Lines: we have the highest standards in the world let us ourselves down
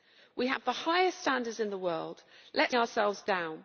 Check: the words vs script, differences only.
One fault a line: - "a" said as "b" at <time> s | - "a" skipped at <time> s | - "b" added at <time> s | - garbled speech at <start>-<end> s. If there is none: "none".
none